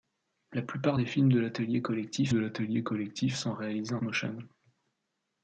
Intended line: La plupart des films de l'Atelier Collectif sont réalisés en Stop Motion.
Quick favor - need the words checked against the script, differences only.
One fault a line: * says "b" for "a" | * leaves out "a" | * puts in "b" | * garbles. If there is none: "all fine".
* puts in "de l'Atelier Collectif"
* leaves out "Stop"